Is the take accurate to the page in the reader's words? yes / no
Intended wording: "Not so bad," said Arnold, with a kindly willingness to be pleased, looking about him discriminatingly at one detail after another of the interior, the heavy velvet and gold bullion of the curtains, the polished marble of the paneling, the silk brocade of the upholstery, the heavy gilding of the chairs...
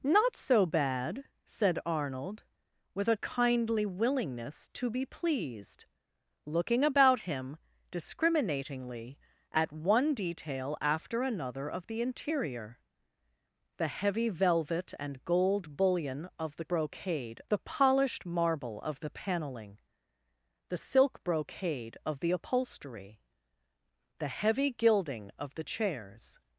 no